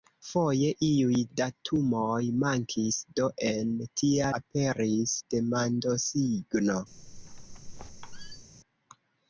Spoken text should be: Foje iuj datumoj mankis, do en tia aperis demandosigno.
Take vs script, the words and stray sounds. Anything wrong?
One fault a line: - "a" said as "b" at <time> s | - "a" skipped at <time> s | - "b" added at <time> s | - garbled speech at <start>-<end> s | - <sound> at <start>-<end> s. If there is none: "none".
- squeak at 6.9-8.5 s